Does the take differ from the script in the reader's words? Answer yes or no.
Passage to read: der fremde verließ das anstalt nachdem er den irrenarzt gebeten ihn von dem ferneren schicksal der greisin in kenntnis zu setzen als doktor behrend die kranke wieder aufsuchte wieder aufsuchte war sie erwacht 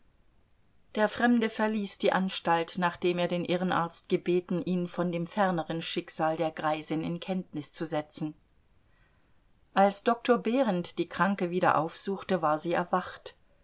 yes